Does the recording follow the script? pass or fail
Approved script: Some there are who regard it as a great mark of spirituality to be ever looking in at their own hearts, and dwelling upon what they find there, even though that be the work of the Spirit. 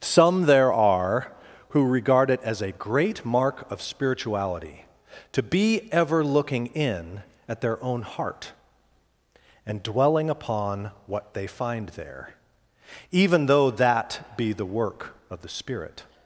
fail